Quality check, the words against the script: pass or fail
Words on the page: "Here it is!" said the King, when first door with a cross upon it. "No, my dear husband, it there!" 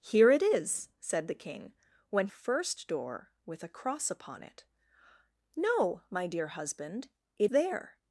pass